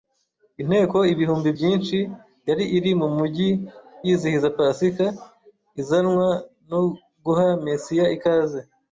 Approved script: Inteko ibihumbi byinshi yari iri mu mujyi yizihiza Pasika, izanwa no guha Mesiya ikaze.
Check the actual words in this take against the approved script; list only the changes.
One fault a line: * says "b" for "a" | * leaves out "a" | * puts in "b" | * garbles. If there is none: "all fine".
all fine